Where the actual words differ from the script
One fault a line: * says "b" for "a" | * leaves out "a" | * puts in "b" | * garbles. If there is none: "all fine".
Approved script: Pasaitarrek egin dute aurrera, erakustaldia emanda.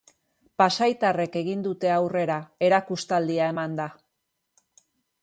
all fine